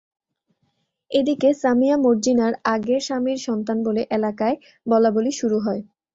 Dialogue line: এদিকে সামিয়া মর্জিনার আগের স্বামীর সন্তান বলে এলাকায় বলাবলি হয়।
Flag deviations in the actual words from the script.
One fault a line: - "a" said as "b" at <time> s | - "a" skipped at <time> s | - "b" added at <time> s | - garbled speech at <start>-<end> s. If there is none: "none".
- "শুরু" added at 5.4 s